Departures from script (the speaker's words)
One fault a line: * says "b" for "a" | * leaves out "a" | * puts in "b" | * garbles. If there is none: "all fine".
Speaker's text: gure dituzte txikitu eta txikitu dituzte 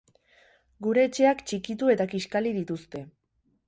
* says "etxeak" for "dituzte"
* says "kiskali" for "txikitu"